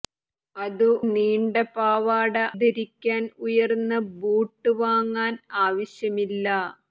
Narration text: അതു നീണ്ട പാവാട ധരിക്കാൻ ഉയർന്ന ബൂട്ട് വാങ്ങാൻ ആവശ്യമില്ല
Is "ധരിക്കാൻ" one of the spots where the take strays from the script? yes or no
no